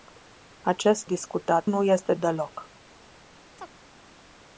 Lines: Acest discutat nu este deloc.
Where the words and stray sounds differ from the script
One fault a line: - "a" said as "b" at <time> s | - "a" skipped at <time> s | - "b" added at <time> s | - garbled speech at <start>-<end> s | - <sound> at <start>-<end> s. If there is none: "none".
- chirp at 3.6-3.7 s